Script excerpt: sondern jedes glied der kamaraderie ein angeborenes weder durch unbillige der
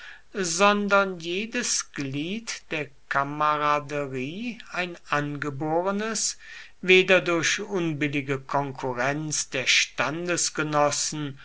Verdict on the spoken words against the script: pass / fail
fail